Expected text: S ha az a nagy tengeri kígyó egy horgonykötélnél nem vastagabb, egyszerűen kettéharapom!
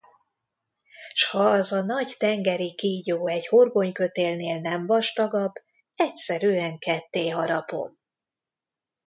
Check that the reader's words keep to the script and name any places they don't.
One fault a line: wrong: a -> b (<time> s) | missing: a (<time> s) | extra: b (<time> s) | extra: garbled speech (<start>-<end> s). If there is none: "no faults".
no faults